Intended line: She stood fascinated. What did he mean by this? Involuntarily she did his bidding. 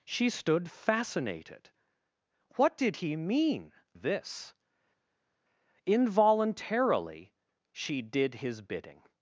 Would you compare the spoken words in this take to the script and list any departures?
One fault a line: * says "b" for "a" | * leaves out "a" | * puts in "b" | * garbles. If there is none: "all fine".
* leaves out "by"